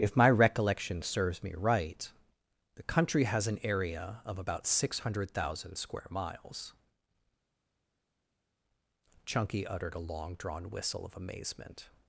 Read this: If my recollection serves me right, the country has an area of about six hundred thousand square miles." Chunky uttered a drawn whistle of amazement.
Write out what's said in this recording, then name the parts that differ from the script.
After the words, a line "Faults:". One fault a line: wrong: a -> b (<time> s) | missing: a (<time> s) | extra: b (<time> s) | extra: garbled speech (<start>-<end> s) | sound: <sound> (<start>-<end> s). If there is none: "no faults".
If my recollection serves me right, the country has an area of about six hundred thousand square miles." Chunky uttered a long drawn whistle of amazement.
Faults:
extra: long (10.0 s)